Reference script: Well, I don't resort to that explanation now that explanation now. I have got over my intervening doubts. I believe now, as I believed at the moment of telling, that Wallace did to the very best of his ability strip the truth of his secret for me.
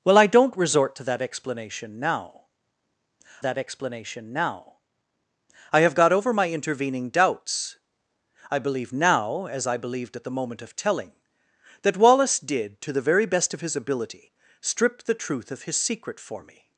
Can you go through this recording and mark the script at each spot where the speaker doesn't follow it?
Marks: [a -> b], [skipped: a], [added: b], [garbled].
Well, I don't resort to that explanation now that explanation now. I have got over my intervening doubts. I believe now, as I believed at the moment of telling, that Wallace did to the very best of his ability strip the truth of his secret for me.